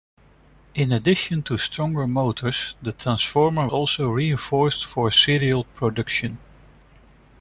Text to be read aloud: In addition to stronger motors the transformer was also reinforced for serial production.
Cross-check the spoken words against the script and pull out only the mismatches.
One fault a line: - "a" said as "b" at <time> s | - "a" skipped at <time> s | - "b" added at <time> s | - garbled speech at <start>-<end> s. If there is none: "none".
- "was" skipped at 3.7 s